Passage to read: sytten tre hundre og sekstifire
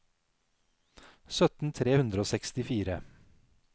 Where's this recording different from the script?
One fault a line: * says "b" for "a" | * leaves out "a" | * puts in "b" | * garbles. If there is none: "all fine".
all fine